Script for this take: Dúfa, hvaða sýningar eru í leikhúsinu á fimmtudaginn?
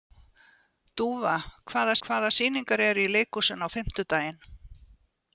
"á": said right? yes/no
yes